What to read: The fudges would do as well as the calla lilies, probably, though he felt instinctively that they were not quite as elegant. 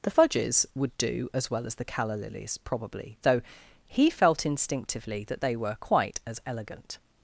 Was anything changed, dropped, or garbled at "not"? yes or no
yes